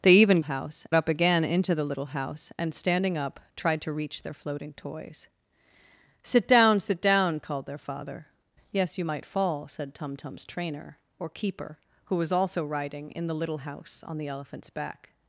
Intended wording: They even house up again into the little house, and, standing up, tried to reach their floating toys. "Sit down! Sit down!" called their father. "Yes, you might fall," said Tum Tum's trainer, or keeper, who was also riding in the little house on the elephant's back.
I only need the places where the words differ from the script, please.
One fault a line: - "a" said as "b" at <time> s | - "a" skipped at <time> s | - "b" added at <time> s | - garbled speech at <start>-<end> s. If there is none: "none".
none